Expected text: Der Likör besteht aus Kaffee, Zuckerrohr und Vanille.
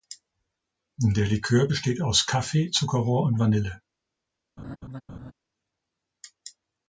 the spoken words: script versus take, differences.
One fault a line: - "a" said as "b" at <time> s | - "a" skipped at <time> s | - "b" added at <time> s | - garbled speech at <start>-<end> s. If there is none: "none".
none